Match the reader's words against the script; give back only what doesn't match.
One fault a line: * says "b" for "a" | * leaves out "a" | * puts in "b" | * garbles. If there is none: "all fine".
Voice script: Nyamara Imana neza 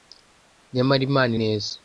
all fine